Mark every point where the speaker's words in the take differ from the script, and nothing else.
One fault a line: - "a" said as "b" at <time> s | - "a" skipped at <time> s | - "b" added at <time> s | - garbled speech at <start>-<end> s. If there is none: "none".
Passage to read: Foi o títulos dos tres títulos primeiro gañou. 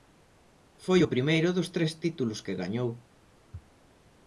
- "títulos" said as "primeiro" at 1.1 s
- "primeiro" said as "que" at 2.5 s